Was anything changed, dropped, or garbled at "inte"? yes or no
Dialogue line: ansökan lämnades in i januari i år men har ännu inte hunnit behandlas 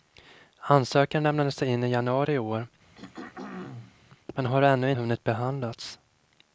yes